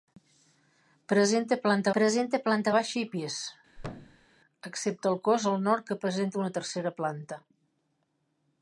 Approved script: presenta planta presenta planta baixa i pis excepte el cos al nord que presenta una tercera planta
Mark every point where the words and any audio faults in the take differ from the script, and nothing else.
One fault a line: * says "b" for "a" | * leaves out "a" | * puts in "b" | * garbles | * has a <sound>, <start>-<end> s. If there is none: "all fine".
* has a thud, 3.8-4.3 s